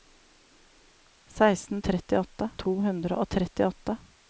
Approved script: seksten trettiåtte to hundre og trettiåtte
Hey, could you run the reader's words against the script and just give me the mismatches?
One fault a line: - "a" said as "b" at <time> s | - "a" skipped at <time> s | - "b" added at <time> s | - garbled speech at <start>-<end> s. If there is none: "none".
none